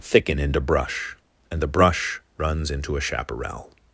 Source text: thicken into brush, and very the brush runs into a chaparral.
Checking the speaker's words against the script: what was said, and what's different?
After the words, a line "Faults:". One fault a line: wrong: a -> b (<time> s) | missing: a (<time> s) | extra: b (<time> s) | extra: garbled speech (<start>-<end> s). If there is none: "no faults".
thicken into brush, and the brush runs into a chaparral.
Faults:
missing: very (1.6 s)